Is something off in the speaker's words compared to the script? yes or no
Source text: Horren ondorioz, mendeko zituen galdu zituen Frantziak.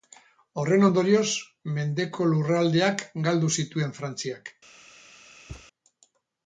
yes